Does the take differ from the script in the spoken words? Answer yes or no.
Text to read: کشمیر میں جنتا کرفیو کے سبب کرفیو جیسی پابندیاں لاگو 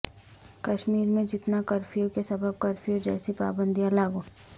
no